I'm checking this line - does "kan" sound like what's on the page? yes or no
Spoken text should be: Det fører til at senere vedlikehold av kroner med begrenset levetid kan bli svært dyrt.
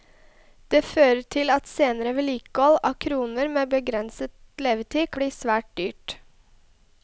no